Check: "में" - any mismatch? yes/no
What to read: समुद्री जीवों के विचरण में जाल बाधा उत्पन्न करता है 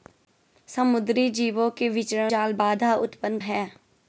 yes